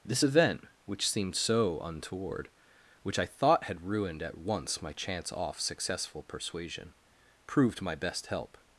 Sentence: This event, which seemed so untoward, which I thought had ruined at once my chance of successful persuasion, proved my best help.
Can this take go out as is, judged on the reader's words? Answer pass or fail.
fail